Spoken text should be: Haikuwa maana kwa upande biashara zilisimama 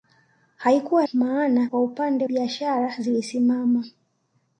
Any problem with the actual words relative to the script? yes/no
no